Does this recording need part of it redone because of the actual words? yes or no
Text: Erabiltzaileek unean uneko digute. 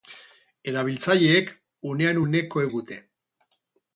no